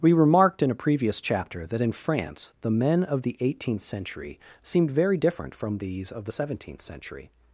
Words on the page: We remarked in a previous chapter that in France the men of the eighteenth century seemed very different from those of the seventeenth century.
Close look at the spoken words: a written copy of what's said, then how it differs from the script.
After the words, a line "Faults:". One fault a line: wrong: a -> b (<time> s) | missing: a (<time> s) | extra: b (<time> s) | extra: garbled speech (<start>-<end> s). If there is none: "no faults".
We remarked in a previous chapter that in France the men of the eighteenth century seemed very different from these of the seventeenth century.
Faults:
wrong: those -> these (5.8 s)